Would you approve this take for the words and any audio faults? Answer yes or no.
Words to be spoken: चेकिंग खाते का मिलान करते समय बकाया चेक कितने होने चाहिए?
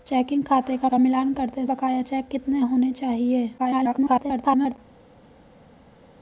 no